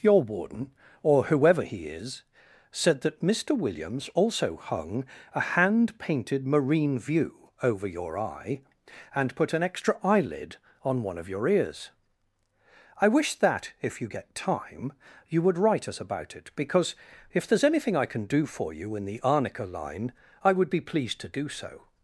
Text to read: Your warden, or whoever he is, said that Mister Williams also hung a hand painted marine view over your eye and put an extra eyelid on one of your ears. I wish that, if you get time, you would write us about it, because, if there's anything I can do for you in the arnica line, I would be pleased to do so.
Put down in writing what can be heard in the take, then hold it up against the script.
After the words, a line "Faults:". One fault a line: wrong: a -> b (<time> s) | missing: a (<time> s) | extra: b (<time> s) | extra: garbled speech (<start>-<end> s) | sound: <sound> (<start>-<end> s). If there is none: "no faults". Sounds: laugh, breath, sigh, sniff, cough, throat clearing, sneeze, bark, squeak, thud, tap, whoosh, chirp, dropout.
Your warden, or whoever he is, said that Mister Williams also hung a hand painted marine view over your eye and put an extra eyelid on one of your ears. I wish that, if you get time, you would write us about it, because, if there's anything I can do for you in the arnica line, I would be pleased to do so.
Faults:
no faults